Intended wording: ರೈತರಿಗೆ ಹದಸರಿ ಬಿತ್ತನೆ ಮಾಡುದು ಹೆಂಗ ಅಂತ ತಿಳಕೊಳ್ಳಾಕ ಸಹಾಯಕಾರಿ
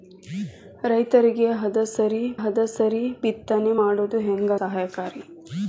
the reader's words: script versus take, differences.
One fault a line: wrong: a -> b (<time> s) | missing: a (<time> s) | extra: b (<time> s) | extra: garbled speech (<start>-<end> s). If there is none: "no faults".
extra: ಹದಸರಿ (2.4 s)
missing: ಅಂತ ತಿಳಕೊಳ್ಳಾಕ (4.5 s)